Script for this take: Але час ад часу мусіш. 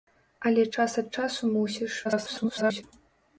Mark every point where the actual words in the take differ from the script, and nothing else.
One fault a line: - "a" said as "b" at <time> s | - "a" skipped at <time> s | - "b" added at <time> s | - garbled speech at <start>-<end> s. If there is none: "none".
- garbled speech at 2.0-2.8 s